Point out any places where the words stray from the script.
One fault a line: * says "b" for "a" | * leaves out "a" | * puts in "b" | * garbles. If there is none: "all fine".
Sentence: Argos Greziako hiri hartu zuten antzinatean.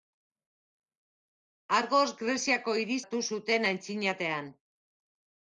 all fine